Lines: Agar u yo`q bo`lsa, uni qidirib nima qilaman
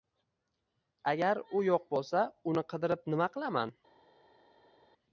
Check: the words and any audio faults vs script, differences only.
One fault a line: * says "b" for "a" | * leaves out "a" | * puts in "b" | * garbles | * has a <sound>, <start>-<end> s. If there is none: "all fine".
all fine